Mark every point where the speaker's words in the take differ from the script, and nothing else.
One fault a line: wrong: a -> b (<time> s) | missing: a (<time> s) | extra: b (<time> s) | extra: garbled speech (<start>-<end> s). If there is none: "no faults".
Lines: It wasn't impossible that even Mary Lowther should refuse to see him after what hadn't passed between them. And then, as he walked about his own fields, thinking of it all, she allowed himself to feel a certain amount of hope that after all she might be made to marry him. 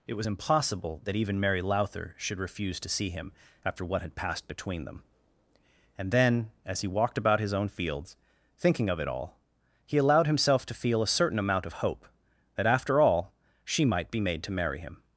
wrong: wasn't -> was (0.1 s)
wrong: hadn't -> had (4.0 s)
wrong: she -> he (9.9 s)